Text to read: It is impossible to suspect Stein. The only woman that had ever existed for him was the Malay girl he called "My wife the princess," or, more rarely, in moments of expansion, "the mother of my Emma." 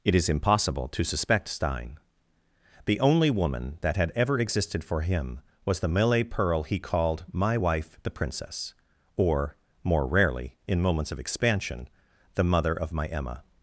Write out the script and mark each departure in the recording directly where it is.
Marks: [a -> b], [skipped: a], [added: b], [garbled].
It is impossible to suspect Stein. The only woman that had ever existed for him was the Malay [girl -> pearl] he called "My wife the princess," or, more rarely, in moments of expansion, "the mother of my Emma."